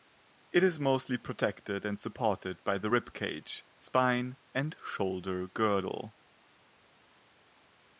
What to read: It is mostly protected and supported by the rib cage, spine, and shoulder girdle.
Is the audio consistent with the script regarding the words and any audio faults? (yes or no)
yes